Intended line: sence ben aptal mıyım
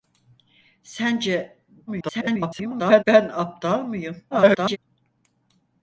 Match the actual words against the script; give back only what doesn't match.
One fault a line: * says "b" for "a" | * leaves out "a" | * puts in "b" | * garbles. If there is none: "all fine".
* garbles
* garbles